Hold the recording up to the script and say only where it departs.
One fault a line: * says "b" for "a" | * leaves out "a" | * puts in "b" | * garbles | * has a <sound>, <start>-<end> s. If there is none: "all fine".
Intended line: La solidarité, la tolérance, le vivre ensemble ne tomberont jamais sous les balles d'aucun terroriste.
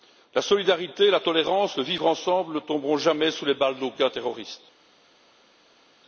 all fine